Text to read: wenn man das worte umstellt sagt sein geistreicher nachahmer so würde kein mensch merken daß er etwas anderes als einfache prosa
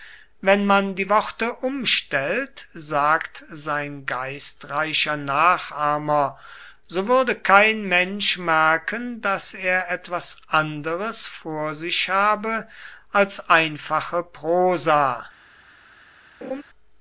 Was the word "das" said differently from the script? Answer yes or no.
yes